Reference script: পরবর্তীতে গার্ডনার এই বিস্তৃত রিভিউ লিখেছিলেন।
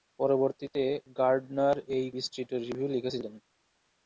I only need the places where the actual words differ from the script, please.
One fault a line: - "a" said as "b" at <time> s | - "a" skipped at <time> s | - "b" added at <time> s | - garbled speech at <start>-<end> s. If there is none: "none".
none